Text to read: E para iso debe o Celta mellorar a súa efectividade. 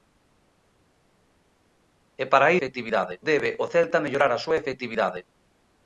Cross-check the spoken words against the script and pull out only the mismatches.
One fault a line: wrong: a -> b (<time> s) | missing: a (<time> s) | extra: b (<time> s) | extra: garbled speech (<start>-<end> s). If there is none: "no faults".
wrong: iso -> efectividade (2.6 s)